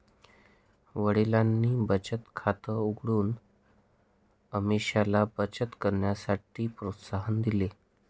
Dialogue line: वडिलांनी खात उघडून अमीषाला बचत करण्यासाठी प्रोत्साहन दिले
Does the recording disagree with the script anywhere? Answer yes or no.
yes